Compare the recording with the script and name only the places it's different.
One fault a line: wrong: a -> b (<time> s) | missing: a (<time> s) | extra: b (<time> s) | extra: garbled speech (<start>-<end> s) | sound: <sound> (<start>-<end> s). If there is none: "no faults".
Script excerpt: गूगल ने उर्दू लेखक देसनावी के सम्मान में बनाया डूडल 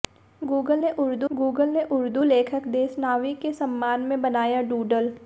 extra: गूगल ने उर्दू (1.3 s)